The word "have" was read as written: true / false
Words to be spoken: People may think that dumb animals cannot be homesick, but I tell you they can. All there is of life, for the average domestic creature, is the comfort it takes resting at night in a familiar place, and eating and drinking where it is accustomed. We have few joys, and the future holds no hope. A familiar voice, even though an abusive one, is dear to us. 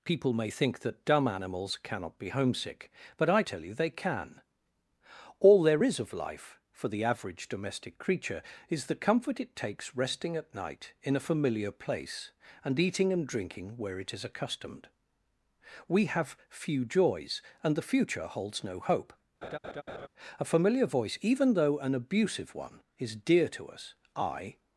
true